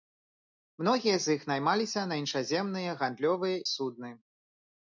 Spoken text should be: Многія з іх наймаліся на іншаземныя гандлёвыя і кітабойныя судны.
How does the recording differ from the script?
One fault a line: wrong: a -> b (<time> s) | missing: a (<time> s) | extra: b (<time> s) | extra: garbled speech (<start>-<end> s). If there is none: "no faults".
missing: і кітабойныя (3.6 s)